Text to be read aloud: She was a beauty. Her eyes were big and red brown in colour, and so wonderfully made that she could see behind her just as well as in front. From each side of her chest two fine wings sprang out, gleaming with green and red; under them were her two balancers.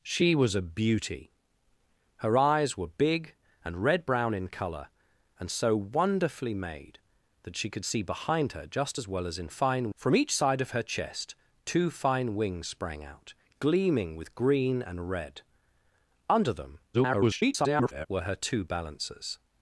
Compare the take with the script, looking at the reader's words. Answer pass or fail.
fail